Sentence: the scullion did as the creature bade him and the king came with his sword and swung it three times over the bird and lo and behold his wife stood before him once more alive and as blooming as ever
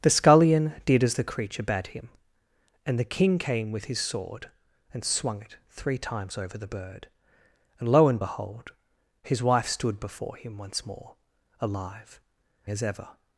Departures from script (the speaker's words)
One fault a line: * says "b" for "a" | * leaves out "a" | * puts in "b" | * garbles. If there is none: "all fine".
* leaves out "and as blooming"